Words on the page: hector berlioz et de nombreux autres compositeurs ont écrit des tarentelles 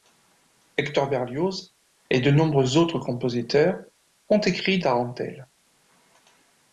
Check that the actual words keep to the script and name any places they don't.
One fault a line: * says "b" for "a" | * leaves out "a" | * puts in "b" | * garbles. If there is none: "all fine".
* leaves out "des"